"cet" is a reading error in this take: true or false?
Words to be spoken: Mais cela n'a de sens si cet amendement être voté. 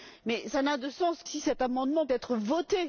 false